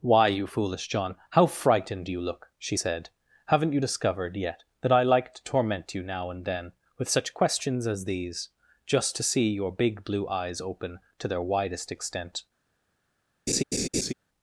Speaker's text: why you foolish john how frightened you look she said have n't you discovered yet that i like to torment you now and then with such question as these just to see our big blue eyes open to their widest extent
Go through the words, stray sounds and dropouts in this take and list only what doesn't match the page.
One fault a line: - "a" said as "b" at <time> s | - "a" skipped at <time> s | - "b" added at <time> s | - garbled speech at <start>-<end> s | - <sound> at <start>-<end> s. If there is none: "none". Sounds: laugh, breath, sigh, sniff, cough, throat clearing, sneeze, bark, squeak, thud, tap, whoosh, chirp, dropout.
- "question" said as "questions" at 7.3 s
- "our" said as "your" at 9.5 s
- laugh at 13.5-14.1 s